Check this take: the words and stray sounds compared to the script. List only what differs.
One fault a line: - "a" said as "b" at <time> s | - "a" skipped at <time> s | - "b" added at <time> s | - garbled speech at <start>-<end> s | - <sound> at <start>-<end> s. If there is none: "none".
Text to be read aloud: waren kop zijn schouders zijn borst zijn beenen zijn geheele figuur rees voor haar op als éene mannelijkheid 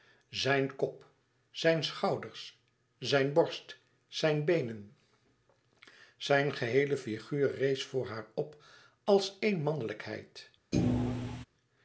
- "waren" said as "zijn" at 0.3 s
- thud at 10.7-11.5 s